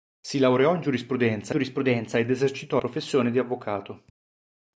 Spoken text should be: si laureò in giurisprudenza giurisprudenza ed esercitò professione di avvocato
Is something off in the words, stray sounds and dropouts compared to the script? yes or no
no